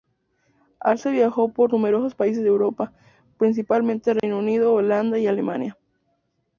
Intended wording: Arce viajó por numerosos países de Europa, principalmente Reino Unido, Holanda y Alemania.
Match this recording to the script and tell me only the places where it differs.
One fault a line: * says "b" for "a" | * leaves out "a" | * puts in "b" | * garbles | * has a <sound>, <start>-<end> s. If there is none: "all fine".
* has a dropout, 4.2-4.2 s